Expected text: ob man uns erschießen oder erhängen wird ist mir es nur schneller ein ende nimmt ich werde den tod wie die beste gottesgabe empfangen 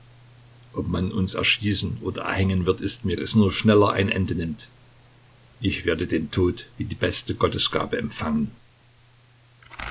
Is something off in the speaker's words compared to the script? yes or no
no